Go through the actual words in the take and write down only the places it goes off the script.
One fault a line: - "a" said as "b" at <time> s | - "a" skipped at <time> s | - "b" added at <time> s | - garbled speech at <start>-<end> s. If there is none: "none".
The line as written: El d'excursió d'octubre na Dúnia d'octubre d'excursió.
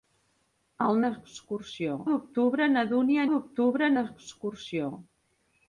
none